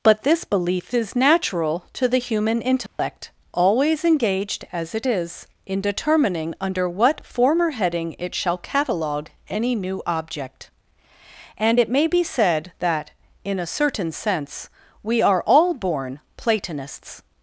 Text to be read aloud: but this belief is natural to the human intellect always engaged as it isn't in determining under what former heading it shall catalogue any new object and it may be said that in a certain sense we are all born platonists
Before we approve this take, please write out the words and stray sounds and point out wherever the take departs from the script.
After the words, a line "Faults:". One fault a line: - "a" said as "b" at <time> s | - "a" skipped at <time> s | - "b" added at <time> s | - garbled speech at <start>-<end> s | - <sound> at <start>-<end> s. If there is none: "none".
but this belief is natural to the human intellect always engaged as it is in determining under what former heading it shall catalogue any new object and it may be said that in a certain sense we are all born platonists
Faults:
- dropout at 2.9-3.0 s
- "isn't" said as "is" at 5.0 s